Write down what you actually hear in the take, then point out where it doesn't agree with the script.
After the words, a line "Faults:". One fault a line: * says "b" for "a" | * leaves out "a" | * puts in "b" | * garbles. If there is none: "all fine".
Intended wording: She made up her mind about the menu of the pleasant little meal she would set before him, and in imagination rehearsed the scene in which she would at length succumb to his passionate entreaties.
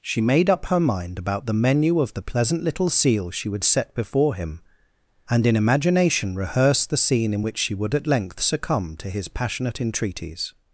She made up her mind about the menu of the pleasant little seal she would set before him, and in imagination rehearsed the scene in which she would at length succumb to his passionate entreaties.
Faults:
* says "seal" for "meal"